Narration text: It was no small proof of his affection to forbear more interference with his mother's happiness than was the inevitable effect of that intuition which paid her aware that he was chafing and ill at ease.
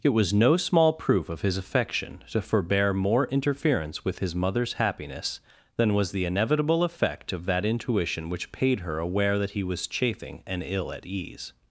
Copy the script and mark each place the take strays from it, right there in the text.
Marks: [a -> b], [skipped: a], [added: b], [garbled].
It was no small proof of his affection to forbear more interference with his mother's happiness than was the inevitable effect of that intuition which paid her aware that he was chafing and ill at ease.